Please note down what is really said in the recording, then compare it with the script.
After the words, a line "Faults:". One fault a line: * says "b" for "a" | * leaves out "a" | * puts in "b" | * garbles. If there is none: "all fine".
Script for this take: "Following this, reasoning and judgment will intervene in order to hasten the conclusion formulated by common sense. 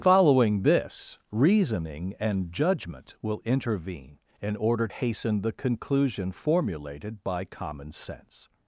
"Following this, reasoning and judgment will intervene in order hasten the conclusion formulated by common sense.
Faults:
* leaves out "to"